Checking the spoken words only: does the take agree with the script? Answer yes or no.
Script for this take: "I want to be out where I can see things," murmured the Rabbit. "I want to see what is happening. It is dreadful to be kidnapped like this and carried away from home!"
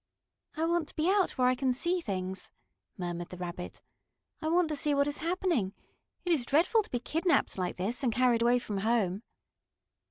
yes